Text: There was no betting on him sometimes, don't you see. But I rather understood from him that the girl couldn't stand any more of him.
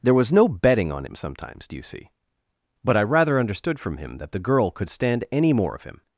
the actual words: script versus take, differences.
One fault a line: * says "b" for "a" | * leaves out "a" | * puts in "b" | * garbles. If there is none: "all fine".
* says "do" for "don't"
* says "could" for "couldn't"